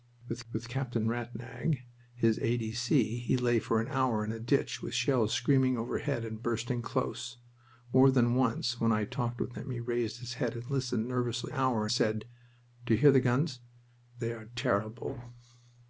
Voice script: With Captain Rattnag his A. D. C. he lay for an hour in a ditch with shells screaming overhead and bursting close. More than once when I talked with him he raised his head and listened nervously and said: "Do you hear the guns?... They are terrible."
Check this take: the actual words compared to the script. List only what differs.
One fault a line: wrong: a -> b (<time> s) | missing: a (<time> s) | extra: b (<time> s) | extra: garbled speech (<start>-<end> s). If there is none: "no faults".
extra: with (0.5 s)
wrong: and -> hour (11.5 s)